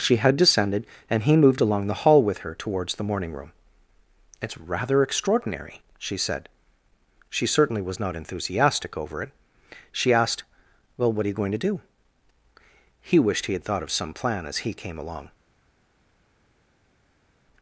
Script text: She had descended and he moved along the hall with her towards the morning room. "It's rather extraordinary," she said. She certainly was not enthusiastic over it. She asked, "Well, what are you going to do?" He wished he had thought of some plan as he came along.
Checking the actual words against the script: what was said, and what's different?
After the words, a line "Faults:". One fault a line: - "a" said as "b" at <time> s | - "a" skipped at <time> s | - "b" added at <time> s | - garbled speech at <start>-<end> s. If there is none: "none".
She had descended and he moved along the hall with her towards the morning room. "It's rather extraordinary," she said. She certainly was not enthusiastic over it. She asked, "Well, what are you going to do?" He wished he had thought of some plan as he came along.
Faults:
none